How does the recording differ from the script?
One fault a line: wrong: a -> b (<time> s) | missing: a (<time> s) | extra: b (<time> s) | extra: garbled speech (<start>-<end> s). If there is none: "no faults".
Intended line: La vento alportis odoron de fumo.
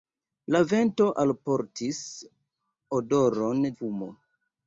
missing: de (3.6 s)